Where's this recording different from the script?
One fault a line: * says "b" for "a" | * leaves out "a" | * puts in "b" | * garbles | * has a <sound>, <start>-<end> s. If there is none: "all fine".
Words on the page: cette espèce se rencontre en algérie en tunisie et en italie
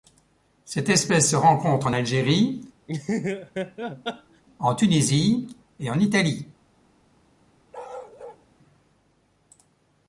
* has a laugh, 2.9-4.4 s
* has a bark, 7.7-8.5 s